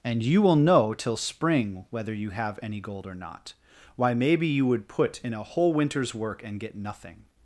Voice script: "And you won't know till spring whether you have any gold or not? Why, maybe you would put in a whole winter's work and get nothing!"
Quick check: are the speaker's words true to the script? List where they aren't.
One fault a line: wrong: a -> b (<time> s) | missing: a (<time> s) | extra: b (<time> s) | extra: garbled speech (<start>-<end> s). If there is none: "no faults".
wrong: won't -> will (0.4 s)